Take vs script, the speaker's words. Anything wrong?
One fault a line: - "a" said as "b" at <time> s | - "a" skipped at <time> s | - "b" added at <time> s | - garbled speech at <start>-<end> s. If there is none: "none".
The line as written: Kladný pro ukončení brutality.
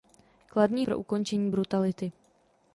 none